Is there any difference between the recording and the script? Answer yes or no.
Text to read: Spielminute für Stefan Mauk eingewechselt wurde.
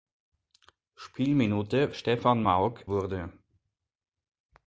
yes